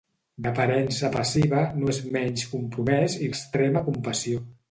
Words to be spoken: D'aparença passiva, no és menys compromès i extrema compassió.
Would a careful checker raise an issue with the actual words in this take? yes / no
no